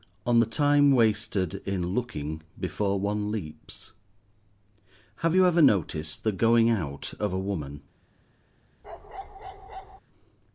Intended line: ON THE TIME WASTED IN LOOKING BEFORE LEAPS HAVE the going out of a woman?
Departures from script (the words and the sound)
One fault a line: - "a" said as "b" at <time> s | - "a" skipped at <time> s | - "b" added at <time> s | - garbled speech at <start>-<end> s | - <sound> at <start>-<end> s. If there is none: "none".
- "ONE" added at 3.0 s
- "you ever noticed" added at 5.3 s
- bark at 8.8-10.0 s